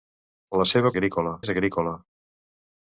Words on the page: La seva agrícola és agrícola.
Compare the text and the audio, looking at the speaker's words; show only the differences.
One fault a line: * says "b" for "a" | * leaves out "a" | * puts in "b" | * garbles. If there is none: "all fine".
all fine